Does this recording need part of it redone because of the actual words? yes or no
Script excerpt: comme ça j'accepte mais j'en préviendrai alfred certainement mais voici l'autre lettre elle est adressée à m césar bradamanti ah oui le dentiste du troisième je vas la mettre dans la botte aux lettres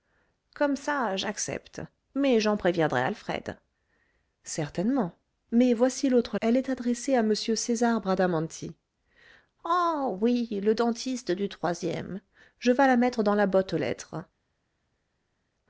yes